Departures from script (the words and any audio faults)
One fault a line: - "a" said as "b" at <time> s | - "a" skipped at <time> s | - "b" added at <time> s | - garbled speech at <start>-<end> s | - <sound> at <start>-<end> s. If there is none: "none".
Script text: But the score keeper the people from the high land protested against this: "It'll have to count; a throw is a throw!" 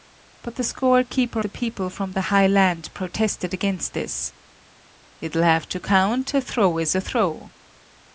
none